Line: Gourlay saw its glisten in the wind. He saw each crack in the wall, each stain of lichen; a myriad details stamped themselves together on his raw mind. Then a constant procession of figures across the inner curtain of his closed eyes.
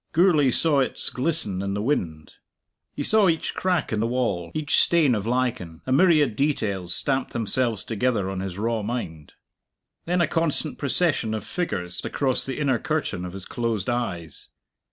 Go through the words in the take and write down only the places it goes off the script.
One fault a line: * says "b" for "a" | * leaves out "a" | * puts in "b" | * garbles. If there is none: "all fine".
all fine